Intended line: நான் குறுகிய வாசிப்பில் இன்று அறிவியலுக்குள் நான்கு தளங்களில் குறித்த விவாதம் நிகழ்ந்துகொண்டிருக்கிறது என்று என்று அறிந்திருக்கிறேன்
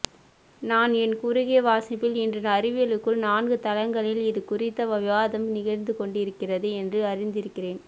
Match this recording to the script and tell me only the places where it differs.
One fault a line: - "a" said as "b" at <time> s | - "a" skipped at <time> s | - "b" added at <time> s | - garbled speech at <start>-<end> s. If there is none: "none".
- "என்" added at 1.0 s
- "இது" added at 4.2 s
- "என்று" skipped at 7.0 s